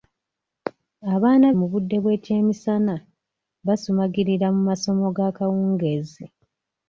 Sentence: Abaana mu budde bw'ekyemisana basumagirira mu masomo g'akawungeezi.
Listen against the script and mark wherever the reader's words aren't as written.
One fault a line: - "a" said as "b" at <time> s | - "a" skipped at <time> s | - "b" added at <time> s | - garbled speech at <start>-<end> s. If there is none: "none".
none